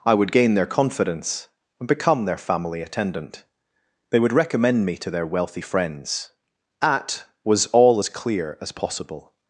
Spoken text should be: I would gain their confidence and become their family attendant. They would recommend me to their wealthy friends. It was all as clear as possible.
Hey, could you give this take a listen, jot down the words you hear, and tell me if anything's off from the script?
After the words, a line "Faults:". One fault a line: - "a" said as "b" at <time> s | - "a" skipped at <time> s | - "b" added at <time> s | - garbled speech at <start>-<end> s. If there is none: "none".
I would gain their confidence and become their family attendant. They would recommend me to their wealthy friends. At was all as clear as possible.
Faults:
- "It" said as "At" at 6.8 s